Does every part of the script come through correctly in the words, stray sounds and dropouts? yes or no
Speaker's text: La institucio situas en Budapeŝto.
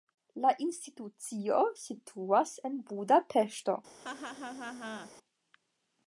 no